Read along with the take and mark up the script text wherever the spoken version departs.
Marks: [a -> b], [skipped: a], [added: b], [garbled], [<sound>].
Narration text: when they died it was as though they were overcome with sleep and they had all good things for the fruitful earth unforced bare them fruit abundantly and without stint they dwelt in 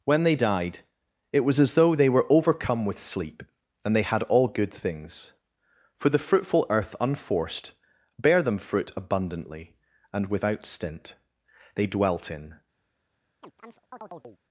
when they died it was as though they were overcome with sleep and they had all good things for the fruitful earth unforced bare them fruit abundantly and without stint they dwelt in [chirp]